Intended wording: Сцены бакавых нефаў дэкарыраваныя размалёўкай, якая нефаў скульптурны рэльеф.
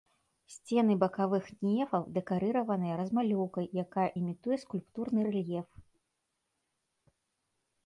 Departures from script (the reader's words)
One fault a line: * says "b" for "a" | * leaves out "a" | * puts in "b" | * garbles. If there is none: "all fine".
* says "імітуе" for "нефаў"